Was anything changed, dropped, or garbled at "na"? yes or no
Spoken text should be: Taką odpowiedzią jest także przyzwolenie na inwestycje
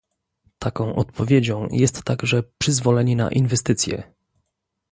no